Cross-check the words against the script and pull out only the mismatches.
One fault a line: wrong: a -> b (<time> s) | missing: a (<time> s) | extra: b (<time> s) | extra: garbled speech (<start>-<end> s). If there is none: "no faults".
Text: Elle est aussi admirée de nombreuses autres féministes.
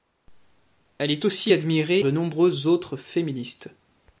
no faults